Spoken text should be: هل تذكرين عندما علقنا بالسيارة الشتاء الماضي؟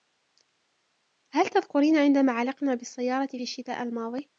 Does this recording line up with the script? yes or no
yes